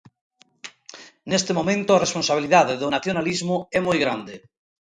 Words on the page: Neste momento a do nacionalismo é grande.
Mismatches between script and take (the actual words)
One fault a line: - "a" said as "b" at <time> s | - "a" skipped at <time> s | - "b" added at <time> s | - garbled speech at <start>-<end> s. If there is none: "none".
- "responsabilidade" added at 2.0 s
- "moi" added at 3.9 s